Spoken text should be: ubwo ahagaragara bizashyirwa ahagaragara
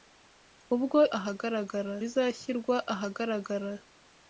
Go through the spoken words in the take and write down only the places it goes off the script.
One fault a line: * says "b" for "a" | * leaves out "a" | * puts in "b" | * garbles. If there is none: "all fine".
all fine